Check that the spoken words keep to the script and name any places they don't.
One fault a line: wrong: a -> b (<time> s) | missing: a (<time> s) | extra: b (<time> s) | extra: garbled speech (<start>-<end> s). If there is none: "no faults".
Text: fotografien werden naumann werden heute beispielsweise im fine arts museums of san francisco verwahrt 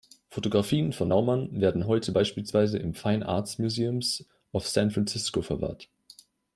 wrong: werden -> von (0.9 s)